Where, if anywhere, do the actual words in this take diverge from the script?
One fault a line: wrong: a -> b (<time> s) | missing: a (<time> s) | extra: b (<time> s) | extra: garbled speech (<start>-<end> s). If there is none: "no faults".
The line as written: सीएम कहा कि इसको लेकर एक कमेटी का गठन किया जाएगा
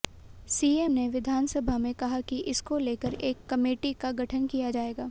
extra: ने विधानसभा में (0.9 s)